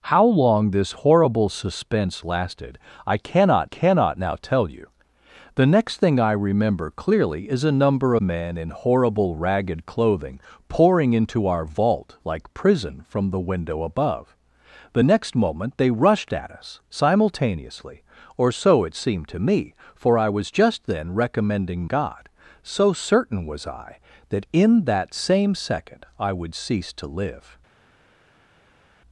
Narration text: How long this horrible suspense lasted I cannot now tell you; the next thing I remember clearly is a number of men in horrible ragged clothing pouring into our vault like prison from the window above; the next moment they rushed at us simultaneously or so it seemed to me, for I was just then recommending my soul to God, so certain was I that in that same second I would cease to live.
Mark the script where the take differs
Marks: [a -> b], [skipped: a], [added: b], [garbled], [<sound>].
How long this horrible suspense lasted I cannot [added: cannot] now tell you; the next thing I remember clearly is a number [skipped: of] men in horrible ragged clothing pouring into our vault like prison from the window above; the next moment they rushed at us simultaneously or so it seemed to me, for I was just then recommending [skipped: my soul to] God, so certain was I that in that same second I would cease to live.